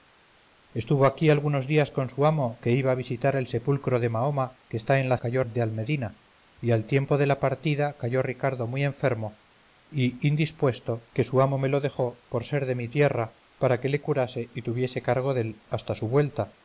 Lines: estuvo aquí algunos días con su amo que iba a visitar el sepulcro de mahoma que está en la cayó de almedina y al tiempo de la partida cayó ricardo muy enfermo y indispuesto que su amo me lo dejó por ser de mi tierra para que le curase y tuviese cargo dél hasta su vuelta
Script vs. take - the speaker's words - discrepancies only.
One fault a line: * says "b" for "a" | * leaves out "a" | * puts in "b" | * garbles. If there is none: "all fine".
all fine